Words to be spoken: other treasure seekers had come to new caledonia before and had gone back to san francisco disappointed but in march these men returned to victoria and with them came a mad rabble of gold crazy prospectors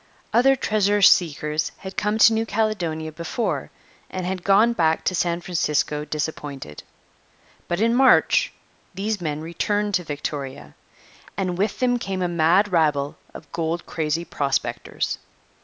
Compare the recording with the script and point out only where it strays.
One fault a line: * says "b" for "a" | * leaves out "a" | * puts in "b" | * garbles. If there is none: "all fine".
all fine